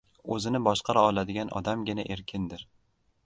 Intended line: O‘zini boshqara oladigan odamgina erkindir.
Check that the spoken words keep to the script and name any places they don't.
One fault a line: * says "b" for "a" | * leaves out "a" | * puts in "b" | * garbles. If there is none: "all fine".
all fine